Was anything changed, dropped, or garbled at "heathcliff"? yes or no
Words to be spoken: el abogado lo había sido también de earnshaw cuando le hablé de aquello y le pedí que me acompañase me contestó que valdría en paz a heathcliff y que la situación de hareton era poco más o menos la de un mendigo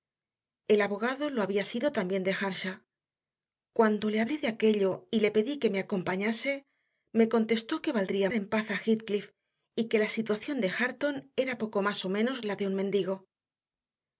no